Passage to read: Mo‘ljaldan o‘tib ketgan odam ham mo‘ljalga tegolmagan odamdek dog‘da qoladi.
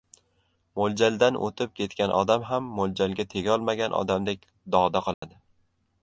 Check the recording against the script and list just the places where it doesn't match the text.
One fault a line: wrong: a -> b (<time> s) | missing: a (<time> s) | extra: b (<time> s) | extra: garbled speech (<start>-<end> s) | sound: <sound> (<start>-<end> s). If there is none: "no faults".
sound: dropout (5.1-5.2 s)